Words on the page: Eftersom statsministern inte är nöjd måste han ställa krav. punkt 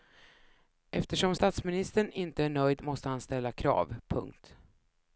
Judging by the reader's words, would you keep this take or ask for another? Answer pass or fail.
pass